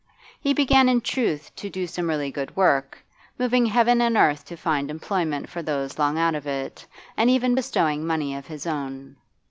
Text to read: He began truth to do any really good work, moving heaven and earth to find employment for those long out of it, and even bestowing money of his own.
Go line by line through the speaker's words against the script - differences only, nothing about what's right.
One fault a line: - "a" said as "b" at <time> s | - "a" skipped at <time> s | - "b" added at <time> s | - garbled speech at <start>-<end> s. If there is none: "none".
- "in" added at 0.9 s
- "any" said as "some" at 1.9 s